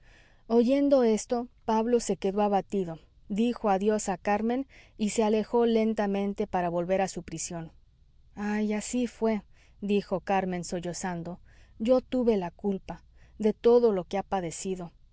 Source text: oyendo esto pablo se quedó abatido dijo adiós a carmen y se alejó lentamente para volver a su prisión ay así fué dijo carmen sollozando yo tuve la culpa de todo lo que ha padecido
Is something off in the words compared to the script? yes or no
no